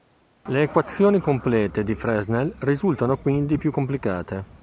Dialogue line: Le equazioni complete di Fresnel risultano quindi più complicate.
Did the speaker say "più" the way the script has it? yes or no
yes